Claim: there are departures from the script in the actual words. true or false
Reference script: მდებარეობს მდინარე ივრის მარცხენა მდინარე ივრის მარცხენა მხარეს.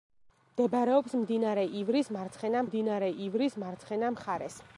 false